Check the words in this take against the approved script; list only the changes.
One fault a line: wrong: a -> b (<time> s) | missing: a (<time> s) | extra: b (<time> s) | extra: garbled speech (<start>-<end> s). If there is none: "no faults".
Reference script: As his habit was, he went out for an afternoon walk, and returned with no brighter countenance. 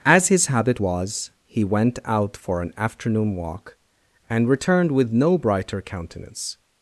no faults